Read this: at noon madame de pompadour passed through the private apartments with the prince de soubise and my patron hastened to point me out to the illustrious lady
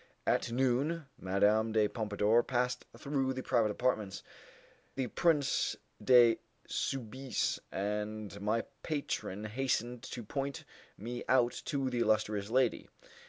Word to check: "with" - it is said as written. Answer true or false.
false